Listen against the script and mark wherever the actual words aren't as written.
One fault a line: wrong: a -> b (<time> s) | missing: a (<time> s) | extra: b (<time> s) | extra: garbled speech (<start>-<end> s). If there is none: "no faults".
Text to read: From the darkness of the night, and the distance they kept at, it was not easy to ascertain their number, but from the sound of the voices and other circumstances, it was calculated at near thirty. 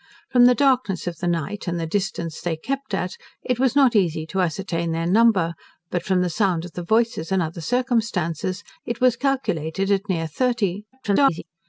extra: garbled speech (10.9-11.4 s)